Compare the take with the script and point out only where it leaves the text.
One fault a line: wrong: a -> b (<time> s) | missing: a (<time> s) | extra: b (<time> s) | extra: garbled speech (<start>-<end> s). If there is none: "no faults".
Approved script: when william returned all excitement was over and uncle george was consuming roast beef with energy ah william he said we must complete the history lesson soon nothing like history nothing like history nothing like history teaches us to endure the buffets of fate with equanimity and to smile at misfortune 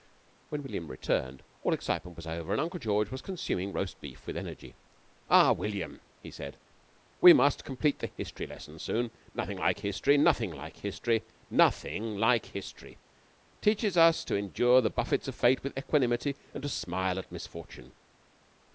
no faults